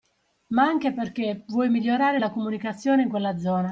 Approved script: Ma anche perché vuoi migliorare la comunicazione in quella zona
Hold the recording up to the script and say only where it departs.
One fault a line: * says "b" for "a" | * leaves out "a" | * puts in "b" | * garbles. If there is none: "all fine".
all fine